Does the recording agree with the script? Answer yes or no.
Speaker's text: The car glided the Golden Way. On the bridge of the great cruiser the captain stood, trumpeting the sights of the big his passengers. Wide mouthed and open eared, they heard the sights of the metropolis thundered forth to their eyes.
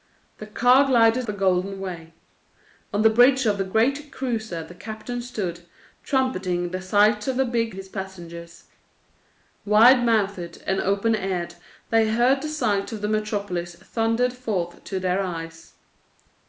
yes